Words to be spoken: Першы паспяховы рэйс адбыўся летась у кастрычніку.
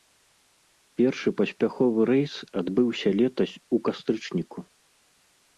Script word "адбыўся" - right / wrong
right